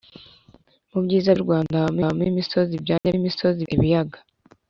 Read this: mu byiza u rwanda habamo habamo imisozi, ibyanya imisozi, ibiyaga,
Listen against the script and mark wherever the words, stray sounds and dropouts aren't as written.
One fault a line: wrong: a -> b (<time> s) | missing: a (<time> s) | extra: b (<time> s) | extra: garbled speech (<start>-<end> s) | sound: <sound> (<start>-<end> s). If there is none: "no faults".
sound: dropout (3.0-3.0 s)